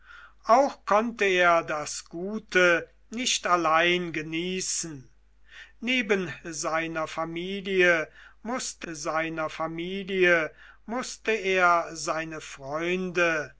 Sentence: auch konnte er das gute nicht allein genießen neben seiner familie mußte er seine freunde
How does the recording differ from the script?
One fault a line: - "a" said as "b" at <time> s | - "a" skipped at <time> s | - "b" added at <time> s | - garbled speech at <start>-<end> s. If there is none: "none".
- "seiner familie mußte" added at 8.9 s